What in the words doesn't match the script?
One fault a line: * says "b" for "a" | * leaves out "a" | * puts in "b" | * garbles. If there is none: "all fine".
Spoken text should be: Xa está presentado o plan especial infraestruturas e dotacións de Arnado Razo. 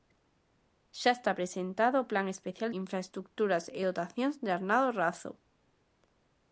all fine